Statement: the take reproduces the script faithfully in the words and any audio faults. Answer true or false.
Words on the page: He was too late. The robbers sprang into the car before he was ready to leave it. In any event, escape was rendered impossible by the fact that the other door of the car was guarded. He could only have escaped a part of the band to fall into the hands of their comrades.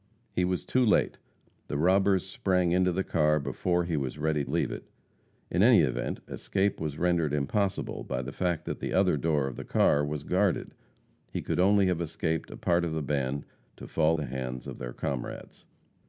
false